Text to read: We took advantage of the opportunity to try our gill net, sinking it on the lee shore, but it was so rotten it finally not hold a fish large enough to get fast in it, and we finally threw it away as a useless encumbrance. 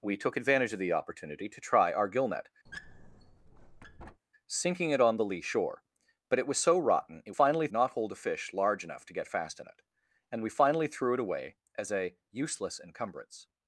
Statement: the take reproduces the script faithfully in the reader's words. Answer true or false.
true